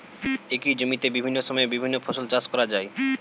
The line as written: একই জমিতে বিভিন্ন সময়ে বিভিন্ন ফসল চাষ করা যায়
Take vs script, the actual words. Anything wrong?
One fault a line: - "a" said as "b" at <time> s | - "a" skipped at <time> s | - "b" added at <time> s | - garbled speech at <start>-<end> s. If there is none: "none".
none